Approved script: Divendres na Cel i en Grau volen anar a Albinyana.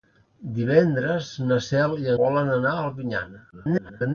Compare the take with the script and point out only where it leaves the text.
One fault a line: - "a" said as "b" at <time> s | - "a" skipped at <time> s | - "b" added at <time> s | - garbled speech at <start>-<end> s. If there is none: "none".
- "en Grau" skipped at 2.1 s
- garbled speech at 3.5-4.1 s